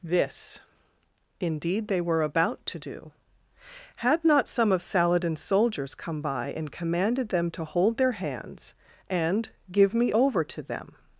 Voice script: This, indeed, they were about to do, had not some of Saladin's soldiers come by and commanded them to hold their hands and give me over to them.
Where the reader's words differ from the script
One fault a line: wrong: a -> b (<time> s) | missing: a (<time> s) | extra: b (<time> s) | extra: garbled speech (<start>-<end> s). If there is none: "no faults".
no faults